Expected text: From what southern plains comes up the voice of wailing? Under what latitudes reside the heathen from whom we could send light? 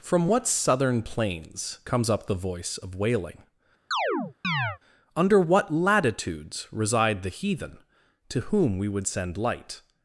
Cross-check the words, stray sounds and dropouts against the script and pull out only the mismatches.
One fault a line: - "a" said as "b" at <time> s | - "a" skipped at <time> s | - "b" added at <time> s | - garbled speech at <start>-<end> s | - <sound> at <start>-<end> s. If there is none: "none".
- chirp at 3.9-4.8 s
- "from" said as "to" at 8.3 s
- "could" said as "would" at 8.9 s